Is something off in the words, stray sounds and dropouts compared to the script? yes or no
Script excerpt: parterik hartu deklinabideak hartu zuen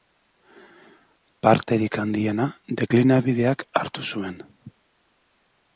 yes